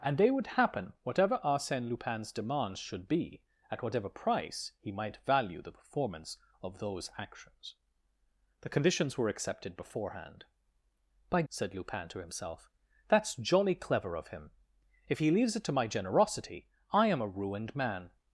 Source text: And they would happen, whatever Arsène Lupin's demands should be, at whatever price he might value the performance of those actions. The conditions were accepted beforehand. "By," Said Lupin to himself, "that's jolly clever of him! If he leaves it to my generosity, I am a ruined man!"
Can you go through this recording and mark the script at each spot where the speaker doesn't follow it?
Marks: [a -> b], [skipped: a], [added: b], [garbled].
And they would happen, whatever Arsène Lupin's demands should be, at whatever price he might value the performance of those actions. The conditions were accepted beforehand. "By," Said Lupin to himself, "that's jolly clever of him! If he leaves it to my generosity, I am a ruined man!"